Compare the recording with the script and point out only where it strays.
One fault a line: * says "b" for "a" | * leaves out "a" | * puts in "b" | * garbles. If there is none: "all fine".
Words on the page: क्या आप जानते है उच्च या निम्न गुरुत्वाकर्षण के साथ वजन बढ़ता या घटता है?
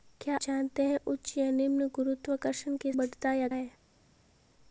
* leaves out "आप"
* leaves out "साथ वजन"
* leaves out "घटता"